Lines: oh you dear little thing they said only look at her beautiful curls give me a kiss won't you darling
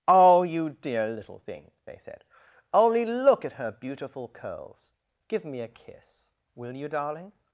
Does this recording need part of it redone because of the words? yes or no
yes